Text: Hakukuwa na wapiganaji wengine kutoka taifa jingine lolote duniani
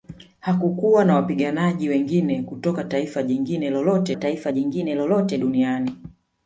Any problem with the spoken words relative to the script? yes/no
yes